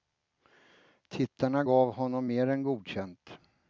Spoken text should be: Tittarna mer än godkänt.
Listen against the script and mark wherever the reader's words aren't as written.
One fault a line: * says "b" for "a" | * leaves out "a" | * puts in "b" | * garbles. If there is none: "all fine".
* puts in "gav honom"